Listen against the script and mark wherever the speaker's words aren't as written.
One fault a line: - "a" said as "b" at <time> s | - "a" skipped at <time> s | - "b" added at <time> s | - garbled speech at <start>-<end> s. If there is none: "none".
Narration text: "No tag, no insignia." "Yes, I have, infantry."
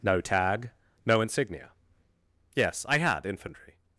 - "have" said as "had" at 3.0 s